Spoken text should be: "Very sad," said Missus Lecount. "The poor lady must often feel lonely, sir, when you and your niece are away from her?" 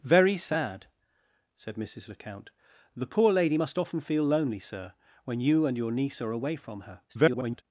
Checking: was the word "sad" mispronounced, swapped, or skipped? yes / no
no